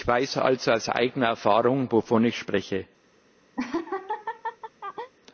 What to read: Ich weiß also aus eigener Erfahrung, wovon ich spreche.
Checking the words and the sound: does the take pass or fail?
fail